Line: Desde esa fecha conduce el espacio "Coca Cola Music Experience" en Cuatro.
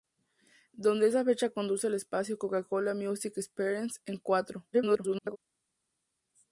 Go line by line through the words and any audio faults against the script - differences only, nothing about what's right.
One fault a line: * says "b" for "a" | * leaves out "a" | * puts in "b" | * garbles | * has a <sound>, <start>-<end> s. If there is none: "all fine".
* garbles